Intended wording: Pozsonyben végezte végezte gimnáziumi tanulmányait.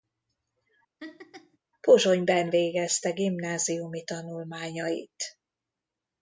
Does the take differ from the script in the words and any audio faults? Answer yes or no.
yes